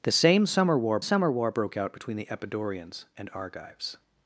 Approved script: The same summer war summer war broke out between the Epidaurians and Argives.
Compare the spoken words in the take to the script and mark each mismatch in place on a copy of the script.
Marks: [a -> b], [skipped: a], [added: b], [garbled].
The same summer war summer war broke out between the Epidaurians and Argives.